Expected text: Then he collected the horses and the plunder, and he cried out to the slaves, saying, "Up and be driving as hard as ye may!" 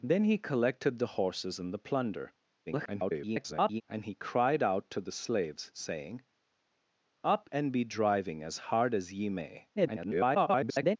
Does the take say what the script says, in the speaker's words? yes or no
no